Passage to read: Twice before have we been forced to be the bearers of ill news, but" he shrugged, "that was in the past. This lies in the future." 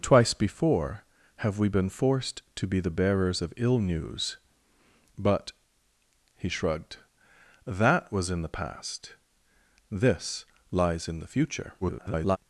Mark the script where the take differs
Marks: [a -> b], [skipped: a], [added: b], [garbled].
Twice before have we been forced to be the bearers of ill news, but" he shrugged, "that was in the past. This lies in the future." [garbled]